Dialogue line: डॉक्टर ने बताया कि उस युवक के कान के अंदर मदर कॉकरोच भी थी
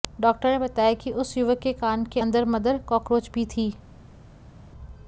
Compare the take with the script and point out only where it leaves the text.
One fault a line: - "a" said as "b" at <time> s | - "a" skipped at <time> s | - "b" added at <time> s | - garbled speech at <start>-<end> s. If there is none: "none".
none